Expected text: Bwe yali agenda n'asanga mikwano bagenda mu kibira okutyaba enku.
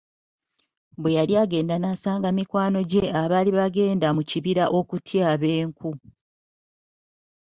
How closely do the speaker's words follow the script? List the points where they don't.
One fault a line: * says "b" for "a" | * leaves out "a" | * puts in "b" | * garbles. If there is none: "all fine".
* puts in "gye abaali"